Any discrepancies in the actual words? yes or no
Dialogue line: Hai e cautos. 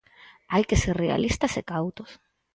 yes